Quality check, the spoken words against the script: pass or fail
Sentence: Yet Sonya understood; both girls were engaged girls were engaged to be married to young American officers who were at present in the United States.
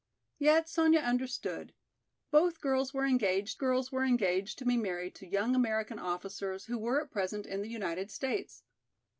pass